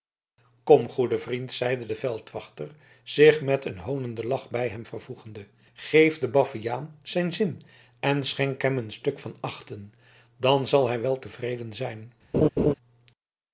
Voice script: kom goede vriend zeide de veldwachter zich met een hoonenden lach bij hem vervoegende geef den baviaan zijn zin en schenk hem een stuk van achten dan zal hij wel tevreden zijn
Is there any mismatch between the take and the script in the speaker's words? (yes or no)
no